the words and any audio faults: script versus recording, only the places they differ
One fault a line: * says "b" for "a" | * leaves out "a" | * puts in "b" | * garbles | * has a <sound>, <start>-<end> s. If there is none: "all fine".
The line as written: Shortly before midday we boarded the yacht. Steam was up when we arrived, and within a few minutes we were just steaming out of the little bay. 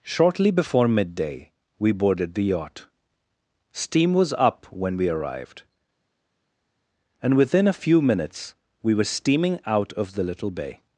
* leaves out "just"